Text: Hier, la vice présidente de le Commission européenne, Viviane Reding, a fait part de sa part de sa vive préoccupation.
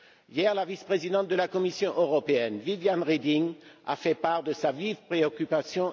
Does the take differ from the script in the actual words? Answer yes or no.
yes